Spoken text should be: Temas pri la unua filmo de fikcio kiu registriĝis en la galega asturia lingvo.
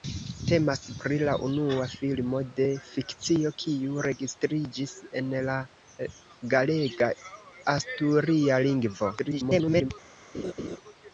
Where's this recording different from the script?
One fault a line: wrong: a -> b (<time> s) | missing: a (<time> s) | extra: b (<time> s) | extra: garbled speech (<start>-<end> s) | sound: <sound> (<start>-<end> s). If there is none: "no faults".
extra: garbled speech (9.2-9.9 s)
sound: laugh (10.3-10.8 s)